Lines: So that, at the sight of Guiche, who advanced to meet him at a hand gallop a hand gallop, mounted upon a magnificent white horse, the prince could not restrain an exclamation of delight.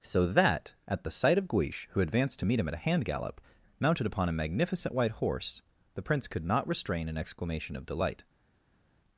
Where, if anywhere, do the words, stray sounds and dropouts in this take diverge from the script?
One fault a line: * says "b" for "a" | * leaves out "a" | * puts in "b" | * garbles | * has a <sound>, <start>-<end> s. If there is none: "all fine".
* leaves out "a hand gallop"